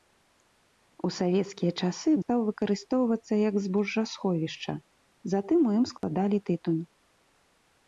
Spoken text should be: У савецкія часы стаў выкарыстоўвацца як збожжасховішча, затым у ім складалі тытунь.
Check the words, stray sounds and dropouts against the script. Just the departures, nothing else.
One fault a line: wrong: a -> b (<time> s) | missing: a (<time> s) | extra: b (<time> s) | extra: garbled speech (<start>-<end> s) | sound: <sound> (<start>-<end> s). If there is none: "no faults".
sound: dropout (6.0-6.0 s)